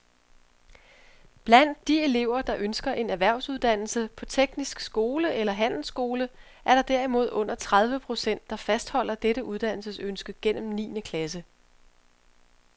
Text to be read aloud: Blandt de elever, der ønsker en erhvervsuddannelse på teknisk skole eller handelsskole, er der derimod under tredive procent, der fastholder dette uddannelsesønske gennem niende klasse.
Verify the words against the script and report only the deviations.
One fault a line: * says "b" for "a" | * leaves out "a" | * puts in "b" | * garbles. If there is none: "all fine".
all fine